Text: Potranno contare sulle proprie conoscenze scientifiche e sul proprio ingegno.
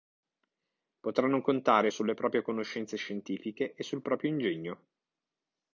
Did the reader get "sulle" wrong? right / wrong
right